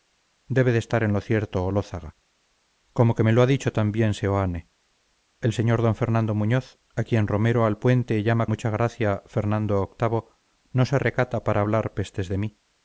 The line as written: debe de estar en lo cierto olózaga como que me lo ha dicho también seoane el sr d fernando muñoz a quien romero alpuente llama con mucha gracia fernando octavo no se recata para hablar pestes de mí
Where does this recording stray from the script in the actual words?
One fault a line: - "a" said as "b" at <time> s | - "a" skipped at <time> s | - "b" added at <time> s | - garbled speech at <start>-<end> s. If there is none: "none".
- "con" skipped at 8.5 s